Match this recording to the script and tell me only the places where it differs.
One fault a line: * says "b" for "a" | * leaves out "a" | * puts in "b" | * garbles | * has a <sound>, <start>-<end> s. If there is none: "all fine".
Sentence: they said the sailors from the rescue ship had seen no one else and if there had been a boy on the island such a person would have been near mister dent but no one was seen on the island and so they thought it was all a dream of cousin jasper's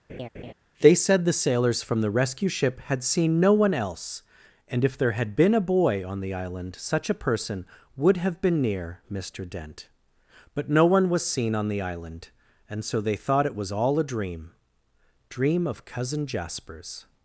* has a laugh, 0.1-0.5 s
* puts in "dream"